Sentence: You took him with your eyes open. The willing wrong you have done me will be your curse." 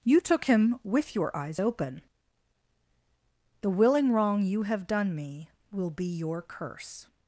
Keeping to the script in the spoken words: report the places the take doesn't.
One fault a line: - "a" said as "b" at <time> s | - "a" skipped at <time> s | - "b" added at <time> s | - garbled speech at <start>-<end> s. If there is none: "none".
none